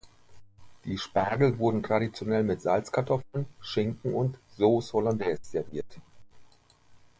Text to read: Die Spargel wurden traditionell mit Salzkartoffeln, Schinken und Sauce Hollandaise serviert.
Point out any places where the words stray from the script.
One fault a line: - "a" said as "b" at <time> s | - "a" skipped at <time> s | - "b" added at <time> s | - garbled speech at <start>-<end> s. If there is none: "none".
none